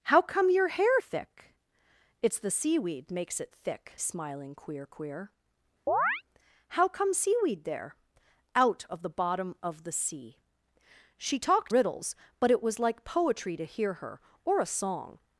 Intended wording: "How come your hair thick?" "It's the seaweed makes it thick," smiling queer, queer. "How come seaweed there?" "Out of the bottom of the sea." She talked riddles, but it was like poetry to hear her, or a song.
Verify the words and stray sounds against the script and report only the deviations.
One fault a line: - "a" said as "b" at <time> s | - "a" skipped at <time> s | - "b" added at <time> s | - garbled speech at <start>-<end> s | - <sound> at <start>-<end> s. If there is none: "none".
- chirp at 5.9-6.2 s